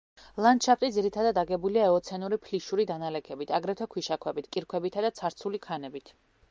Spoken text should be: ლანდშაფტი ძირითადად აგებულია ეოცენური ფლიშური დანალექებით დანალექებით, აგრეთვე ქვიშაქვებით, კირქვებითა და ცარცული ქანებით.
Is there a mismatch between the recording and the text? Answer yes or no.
yes